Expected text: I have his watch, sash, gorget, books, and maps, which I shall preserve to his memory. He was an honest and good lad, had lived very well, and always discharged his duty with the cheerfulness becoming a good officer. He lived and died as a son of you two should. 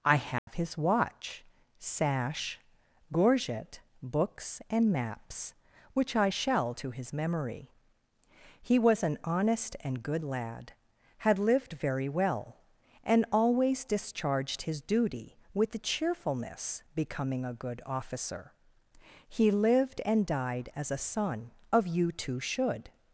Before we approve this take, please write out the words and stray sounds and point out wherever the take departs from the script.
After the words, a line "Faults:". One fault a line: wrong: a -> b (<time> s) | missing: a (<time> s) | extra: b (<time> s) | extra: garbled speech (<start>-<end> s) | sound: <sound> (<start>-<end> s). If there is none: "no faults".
I have his watch, sash, gorget, books, and maps, which I shall to his memory. He was an honest and good lad, had lived very well, and always discharged his duty with the cheerfulness becoming a good officer. He lived and died as a son of you two should.
Faults:
sound: dropout (0.4-0.5 s)
missing: preserve (6.7 s)